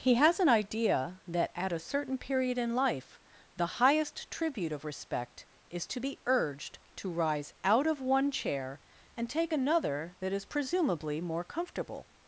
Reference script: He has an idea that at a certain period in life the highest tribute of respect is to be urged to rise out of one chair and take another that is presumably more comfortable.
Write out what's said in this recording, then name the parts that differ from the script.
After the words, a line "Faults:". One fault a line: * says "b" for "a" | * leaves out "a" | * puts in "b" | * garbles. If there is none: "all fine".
He has an idea that at a certain period in life the highest tribute of respect is to be urged to rise out of one chair and take another that is presumably more comfortable.
Faults:
all fine